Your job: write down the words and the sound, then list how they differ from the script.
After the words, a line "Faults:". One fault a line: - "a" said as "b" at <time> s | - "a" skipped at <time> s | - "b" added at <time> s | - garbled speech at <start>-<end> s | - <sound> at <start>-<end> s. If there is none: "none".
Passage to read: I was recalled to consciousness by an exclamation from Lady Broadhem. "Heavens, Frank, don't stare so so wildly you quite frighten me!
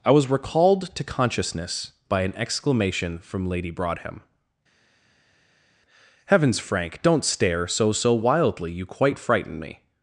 I was recalled to consciousness by an exclamation from Lady Broadhem. "Heavens, Frank, don't stare so so wildly you quite frighten me!
Faults:
none